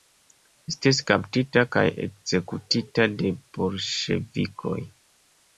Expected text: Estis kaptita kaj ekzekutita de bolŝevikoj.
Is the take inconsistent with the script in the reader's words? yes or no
no